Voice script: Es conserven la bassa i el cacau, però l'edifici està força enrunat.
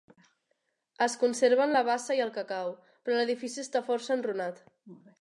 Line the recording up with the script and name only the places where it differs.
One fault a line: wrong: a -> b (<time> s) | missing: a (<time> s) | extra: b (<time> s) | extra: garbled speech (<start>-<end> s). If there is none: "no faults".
no faults